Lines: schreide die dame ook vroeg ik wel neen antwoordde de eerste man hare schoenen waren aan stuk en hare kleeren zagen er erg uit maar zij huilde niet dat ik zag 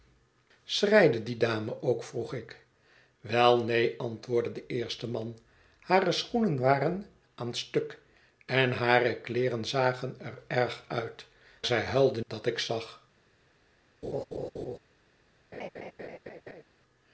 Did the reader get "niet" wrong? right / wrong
wrong